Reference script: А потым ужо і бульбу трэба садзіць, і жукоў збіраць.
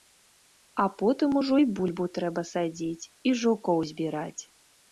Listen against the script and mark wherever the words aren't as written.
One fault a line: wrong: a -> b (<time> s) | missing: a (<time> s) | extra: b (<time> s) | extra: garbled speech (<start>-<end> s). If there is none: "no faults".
no faults